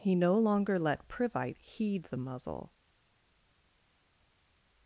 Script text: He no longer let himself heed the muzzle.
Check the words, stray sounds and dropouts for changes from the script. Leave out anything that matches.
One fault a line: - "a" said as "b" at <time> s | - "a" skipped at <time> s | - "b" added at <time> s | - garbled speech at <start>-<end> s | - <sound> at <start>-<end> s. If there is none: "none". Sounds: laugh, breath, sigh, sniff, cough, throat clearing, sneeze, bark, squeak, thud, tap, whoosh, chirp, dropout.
- "himself" said as "privite" at 1.1 s